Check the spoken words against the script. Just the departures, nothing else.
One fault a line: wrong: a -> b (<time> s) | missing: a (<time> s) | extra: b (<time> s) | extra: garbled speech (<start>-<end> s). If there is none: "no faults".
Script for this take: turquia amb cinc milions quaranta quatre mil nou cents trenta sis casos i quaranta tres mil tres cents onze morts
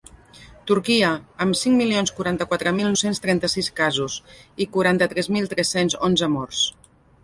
missing: nou (2.9 s)